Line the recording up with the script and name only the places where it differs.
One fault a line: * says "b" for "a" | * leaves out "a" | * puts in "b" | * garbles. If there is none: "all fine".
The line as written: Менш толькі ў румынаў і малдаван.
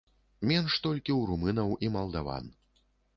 all fine